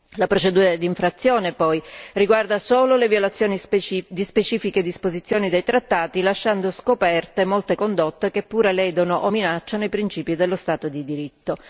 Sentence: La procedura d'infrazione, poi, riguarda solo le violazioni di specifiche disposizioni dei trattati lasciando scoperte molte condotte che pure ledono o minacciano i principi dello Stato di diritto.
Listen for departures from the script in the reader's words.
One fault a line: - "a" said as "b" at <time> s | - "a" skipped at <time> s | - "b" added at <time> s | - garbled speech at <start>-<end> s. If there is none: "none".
none